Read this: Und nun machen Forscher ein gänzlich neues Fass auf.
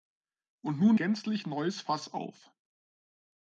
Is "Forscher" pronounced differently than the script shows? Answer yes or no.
yes